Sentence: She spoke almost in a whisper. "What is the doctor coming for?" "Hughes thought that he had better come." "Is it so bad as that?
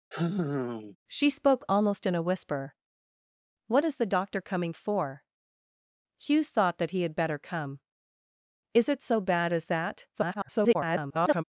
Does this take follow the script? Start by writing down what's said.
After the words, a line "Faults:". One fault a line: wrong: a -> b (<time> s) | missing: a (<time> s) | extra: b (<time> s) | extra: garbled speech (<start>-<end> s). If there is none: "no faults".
She spoke almost in a whisper. "What is the doctor coming for?" "Hughes thought that he had better come." "Is it so bad as that? [garbled]
Faults:
extra: garbled speech (10.1-11.4 s)